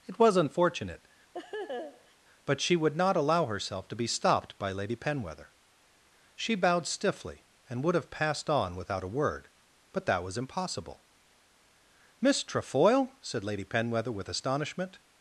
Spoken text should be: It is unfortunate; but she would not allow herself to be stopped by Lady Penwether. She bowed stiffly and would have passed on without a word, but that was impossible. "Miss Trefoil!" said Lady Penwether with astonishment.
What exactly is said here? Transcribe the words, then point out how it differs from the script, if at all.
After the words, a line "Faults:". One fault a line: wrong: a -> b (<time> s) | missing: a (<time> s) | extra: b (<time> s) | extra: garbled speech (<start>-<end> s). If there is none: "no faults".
It was unfortunate; but she would not allow herself to be stopped by Lady Penwether. She bowed stiffly and would have passed on without a word, but that was impossible. "Miss Trefoil!" said Lady Penwether with astonishment.
Faults:
wrong: is -> was (0.2 s)